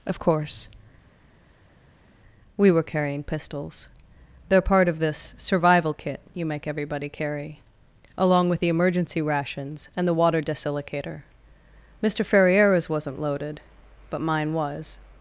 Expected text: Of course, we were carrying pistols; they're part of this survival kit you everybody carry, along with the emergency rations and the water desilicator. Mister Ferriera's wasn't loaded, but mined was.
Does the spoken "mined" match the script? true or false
false